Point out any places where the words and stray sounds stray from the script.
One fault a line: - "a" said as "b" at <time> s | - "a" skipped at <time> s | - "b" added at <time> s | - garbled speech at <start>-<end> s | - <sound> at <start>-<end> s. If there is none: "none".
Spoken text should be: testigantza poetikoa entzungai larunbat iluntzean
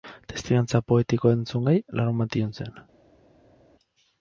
none